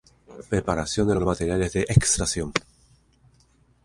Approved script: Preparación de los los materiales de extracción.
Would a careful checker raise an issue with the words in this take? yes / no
no